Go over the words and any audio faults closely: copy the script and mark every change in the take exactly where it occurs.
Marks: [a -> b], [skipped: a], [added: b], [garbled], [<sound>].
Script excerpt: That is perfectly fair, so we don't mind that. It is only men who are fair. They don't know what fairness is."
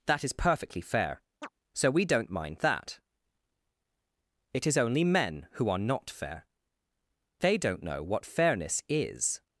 That is perfectly fair, [chirp] so we don't mind that. It is only men who are [added: not] fair. They don't know what fairness is."